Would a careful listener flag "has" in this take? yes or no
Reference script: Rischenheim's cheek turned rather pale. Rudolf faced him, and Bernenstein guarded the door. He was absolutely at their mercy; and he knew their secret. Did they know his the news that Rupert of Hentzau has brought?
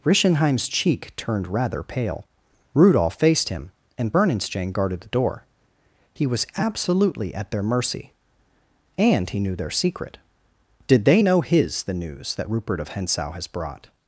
no